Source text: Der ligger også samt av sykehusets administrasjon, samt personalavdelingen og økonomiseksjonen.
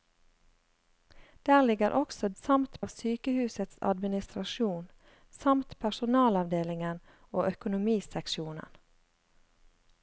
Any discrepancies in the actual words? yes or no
no